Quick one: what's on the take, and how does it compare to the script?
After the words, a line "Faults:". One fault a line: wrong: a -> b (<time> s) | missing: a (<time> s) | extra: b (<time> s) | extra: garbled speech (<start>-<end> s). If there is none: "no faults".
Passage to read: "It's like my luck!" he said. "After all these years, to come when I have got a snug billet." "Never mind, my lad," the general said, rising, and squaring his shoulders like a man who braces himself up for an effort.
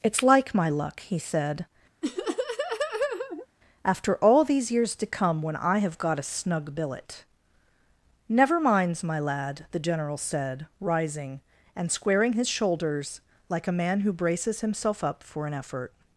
"It's like my luck!" he said. "After all these years, to come when I have got a snug billet." "Never minds, my lad," the general said, rising, and squaring his shoulders like a man who braces himself up for an effort.
Faults:
wrong: mind -> minds (8.6 s)